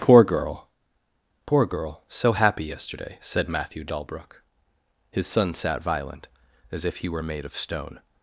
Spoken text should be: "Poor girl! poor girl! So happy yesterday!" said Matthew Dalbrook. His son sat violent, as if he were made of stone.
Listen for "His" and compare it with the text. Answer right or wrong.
right